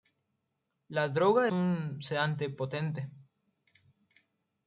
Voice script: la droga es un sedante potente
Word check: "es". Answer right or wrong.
wrong